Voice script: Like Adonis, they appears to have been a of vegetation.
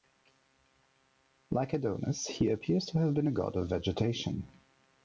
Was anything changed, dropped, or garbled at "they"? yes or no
yes